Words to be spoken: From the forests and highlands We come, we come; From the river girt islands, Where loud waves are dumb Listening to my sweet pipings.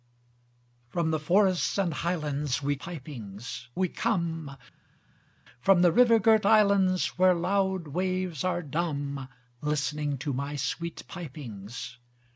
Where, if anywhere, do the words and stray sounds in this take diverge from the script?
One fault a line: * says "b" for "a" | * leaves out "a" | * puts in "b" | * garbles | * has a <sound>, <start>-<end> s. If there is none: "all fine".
* says "pipings" for "come"